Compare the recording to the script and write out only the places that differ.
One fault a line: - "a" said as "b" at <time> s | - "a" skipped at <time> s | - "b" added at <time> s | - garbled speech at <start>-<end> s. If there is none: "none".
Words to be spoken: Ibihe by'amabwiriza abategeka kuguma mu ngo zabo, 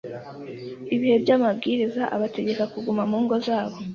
none